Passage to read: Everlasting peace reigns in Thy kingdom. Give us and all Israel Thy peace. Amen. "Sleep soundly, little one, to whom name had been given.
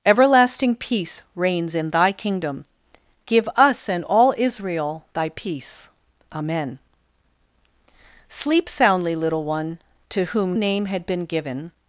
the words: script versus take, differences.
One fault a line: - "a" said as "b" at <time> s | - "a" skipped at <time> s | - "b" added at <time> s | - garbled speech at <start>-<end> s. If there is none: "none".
none